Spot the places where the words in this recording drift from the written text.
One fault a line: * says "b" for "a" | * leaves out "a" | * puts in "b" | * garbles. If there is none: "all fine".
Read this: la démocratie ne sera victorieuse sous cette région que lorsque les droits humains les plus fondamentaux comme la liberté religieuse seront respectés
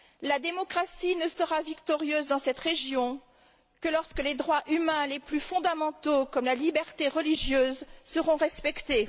* says "dans" for "sous"